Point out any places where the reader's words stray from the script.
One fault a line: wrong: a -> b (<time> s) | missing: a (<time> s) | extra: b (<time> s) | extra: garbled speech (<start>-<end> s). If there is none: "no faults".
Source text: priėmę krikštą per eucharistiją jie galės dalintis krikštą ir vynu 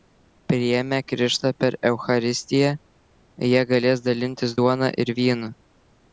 wrong: krikštą -> duona (4.6 s)